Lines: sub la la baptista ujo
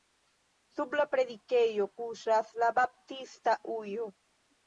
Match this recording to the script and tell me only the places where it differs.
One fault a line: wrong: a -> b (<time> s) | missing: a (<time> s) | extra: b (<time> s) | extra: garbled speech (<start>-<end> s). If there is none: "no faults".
extra: predikejo kuŝas (1.1 s)